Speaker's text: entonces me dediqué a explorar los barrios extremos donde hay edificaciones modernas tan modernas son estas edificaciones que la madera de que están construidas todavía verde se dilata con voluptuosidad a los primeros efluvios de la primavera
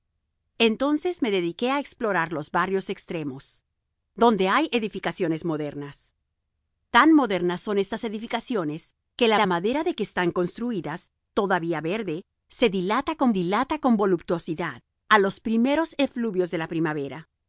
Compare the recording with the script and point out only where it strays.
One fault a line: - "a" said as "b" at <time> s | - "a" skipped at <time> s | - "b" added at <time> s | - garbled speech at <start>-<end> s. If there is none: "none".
- "la" added at 9.3 s
- "dilata con" added at 13.3 s